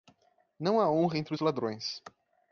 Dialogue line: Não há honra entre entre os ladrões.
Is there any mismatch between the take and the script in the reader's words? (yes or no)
yes